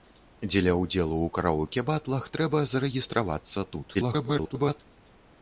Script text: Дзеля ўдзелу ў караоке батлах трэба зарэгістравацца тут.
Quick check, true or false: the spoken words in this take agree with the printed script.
false